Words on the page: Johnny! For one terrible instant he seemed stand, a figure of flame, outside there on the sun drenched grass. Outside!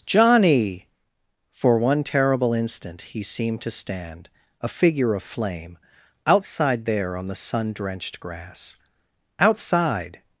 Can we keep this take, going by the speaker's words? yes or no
no